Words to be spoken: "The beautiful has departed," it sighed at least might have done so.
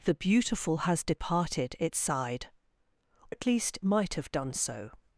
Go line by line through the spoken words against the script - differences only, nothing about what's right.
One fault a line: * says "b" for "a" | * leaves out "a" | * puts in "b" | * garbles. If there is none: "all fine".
all fine